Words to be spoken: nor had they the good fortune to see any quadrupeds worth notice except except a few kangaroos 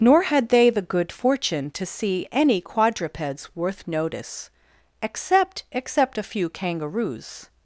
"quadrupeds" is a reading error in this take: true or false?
false